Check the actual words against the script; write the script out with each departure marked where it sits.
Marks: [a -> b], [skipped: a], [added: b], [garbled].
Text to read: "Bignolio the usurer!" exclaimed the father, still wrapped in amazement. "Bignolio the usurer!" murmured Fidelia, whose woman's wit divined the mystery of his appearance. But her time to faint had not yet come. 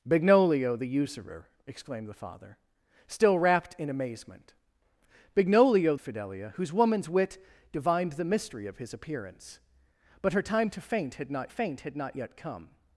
"Bignolio the usurer!" exclaimed the father, still wrapped in amazement. "Bignolio [skipped: the usurer!" murmured] Fidelia, whose woman's wit divined the mystery of his appearance. But her time to faint had not [added: faint had not] yet come.